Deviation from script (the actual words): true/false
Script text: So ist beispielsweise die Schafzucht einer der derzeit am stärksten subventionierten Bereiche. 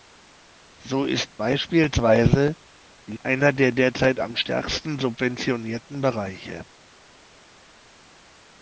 true